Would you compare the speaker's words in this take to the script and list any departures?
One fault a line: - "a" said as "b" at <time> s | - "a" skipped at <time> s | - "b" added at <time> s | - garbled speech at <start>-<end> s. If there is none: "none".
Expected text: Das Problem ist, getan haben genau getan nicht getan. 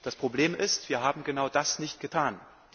- "getan" said as "wir" at 0.9 s
- "getan" said as "das" at 1.5 s